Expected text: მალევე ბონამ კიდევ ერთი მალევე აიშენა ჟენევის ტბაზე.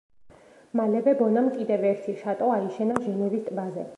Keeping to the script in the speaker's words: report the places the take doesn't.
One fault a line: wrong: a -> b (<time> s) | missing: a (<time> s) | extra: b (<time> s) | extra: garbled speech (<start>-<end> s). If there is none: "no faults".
wrong: მალევე -> შატო (2.2 s)